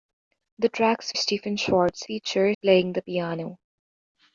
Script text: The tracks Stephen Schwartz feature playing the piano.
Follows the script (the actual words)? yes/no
yes